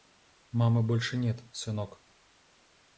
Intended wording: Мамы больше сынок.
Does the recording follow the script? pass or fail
fail